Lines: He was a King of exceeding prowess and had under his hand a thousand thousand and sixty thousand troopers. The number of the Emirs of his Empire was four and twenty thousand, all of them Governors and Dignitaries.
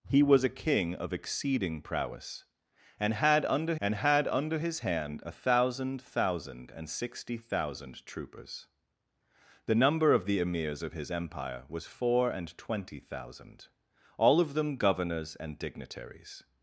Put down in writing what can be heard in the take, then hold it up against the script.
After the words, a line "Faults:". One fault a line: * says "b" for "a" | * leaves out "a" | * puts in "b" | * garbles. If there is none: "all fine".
He was a King of exceeding prowess and had under and had under his hand a thousand thousand and sixty thousand troopers. The number of the Emirs of his Empire was four and twenty thousand, all of them Governors and Dignitaries.
Faults:
* puts in "and had under"